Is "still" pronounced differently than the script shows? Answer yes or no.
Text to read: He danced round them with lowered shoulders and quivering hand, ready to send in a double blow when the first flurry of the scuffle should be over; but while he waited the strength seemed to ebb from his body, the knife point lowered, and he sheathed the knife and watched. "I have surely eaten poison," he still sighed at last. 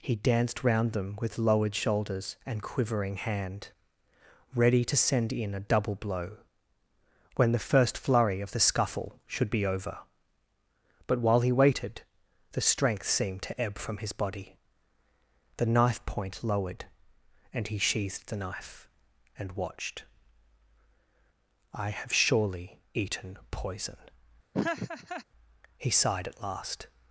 yes